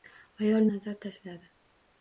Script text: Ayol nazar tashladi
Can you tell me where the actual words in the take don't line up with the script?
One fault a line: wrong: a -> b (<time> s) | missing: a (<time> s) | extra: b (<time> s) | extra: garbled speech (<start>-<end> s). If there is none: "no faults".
no faults